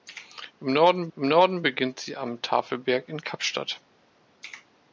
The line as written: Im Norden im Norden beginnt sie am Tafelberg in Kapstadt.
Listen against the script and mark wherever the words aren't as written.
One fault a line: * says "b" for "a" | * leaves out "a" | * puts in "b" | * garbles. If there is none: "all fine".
all fine